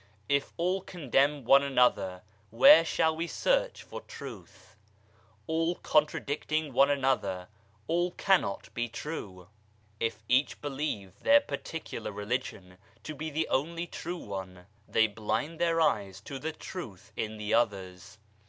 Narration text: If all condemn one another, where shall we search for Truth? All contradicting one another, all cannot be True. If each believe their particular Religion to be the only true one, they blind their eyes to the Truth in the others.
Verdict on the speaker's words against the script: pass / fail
pass